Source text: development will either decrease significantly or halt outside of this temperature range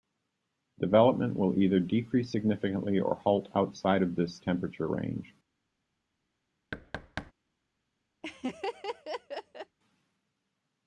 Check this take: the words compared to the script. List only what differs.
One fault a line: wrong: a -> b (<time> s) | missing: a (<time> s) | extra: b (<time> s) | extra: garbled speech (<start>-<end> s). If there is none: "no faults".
no faults